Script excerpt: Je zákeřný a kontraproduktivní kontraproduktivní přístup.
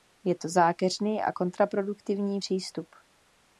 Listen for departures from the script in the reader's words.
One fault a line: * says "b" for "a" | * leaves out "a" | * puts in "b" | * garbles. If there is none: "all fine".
* puts in "to"
* leaves out "kontraproduktivní"